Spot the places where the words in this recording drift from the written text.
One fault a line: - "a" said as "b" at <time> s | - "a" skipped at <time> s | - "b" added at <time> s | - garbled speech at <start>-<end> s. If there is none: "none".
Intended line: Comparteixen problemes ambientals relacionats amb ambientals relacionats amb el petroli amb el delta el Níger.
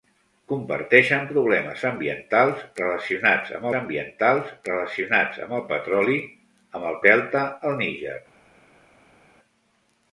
none